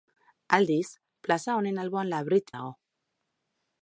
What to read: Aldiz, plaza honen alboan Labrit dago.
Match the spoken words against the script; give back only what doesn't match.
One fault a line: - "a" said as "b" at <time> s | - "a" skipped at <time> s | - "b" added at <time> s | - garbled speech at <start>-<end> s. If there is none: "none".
none